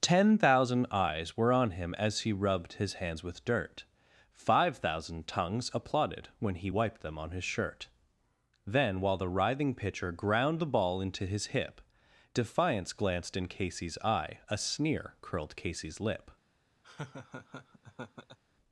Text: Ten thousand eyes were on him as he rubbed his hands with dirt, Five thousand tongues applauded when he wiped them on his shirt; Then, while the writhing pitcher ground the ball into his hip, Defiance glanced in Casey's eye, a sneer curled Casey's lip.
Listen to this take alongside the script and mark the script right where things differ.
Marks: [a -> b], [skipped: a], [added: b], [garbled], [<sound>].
Ten thousand eyes were on him as he rubbed his hands with dirt, Five thousand tongues applauded when he wiped them on his shirt; Then, while the writhing pitcher ground the ball into his hip, Defiance glanced in Casey's eye, a sneer curled Casey's lip. [laugh]